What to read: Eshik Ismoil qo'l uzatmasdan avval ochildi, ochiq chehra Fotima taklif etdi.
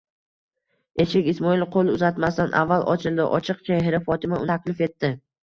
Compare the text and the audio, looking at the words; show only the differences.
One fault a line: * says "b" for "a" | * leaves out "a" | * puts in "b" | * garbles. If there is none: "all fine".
all fine